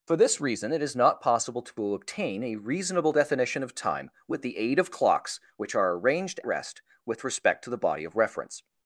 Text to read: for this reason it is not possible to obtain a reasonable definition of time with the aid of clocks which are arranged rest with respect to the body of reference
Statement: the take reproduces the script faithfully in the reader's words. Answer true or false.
true